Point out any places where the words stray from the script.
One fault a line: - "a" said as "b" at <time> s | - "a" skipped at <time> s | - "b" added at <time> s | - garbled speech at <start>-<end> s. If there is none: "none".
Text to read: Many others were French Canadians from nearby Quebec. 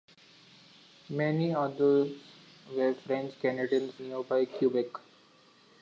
- "from" skipped at 3.9 s